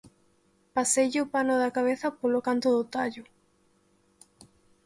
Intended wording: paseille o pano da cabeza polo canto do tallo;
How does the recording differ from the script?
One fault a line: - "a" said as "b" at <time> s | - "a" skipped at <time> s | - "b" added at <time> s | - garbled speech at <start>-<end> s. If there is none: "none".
none